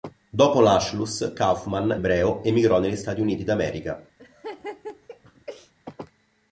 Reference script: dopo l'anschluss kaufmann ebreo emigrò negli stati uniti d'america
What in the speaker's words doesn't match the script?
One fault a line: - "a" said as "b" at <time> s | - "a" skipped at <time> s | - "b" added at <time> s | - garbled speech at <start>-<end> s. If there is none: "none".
none